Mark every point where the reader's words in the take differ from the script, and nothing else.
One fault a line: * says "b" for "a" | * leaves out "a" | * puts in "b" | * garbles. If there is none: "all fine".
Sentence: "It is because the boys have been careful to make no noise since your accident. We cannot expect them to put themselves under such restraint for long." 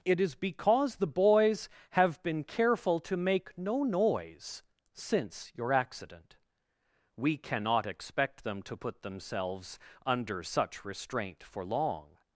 all fine